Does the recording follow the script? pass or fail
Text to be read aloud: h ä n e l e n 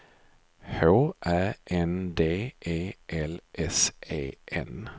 fail